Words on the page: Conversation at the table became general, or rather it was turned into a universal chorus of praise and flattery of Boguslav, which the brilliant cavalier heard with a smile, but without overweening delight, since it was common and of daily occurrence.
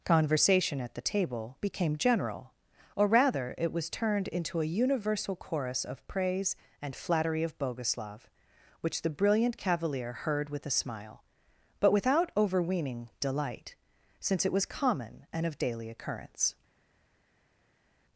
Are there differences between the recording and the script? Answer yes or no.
no